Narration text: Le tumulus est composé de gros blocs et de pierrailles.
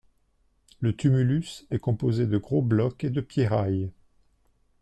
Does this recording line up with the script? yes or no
yes